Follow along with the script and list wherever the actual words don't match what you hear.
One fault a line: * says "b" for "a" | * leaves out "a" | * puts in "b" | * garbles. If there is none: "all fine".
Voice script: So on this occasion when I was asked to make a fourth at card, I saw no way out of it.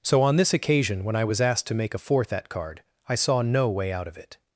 all fine